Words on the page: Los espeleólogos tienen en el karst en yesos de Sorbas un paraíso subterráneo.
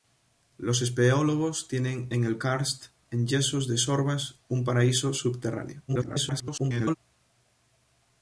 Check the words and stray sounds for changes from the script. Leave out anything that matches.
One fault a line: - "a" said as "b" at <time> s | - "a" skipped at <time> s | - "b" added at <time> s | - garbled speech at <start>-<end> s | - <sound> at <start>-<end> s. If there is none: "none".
- garbled speech at 5.9-7.0 s